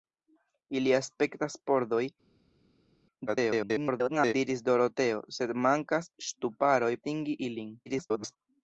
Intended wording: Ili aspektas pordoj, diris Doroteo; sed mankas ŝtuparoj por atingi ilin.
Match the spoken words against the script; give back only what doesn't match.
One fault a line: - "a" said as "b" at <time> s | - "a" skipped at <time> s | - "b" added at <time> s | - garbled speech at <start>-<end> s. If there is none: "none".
- garbled speech at 3.3-4.3 s
- "por" skipped at 6.9 s
- garbled speech at 7.9-8.4 s